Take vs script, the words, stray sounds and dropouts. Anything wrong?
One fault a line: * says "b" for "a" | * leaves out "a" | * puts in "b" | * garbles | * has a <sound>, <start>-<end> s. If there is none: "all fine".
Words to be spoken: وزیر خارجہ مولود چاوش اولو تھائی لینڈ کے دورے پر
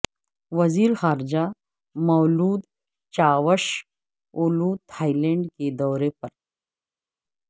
all fine